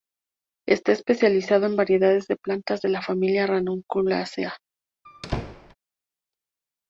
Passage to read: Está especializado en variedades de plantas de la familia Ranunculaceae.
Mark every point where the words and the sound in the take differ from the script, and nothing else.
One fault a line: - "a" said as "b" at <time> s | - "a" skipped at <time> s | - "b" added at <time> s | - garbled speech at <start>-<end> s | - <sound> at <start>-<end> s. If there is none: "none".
- squeak at 5.0-5.7 s